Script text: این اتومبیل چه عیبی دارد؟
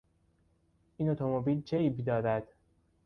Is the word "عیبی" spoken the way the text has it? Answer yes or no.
yes